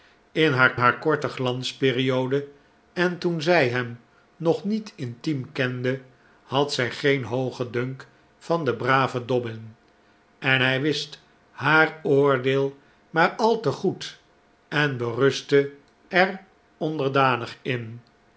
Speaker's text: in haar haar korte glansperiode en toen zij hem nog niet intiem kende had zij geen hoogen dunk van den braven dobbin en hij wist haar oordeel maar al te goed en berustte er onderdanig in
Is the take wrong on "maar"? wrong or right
right